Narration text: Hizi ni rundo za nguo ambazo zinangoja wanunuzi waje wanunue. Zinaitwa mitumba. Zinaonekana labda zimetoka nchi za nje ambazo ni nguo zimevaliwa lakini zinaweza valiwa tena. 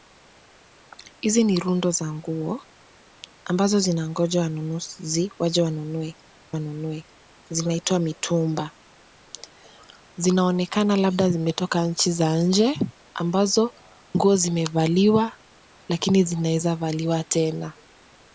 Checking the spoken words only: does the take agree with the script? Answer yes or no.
no